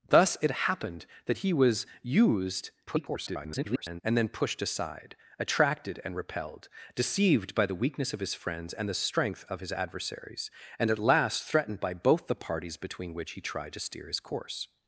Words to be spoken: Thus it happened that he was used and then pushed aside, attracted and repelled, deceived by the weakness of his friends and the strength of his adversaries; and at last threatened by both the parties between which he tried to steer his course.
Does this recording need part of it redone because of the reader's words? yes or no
yes